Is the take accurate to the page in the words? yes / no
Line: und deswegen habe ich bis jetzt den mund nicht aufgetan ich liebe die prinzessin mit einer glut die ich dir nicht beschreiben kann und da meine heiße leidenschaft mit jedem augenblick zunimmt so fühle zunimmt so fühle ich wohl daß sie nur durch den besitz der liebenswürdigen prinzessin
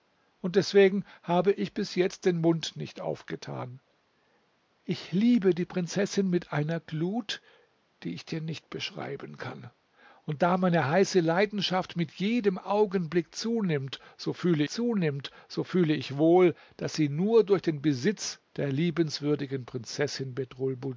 yes